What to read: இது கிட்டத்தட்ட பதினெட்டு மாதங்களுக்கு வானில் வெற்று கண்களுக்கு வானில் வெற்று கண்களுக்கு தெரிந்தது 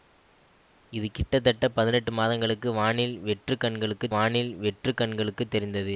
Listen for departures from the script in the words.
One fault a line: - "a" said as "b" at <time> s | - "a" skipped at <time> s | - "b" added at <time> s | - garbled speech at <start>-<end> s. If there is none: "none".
none